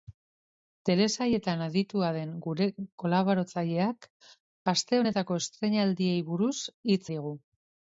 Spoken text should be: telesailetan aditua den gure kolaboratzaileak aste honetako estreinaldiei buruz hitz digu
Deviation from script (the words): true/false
false